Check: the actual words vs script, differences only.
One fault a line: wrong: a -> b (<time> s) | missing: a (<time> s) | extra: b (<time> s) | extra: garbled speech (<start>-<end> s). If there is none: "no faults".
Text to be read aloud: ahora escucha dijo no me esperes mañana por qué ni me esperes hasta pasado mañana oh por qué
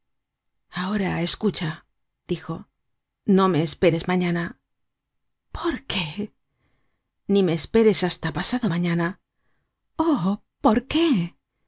no faults